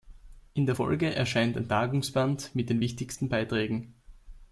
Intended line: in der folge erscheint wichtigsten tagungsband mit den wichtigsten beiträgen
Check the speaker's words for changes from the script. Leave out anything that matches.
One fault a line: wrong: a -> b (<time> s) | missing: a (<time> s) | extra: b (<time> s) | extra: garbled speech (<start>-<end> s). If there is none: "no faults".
wrong: wichtigsten -> ein (1.6 s)